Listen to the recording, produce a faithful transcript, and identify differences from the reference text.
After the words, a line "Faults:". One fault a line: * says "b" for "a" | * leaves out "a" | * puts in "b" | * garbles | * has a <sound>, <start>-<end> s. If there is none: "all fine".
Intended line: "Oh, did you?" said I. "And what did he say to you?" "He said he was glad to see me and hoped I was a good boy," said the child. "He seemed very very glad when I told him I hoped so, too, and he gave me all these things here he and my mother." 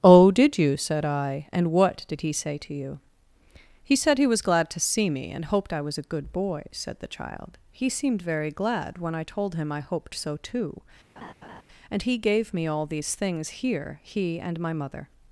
"Oh, did you?" said I. "And what did he say to you?" "He said he was glad to see me and hoped I was a good boy," said the child. "He seemed very glad when I told him I hoped so, too, and he gave me all these things here he and my mother."
Faults:
* leaves out "very"
* has a laugh, 11.2-11.6 s